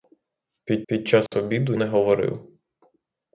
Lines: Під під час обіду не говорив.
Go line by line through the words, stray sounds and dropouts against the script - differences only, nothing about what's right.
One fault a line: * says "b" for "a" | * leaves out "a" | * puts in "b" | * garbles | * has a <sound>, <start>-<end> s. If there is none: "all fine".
* has a dropout, 1.3-1.3 s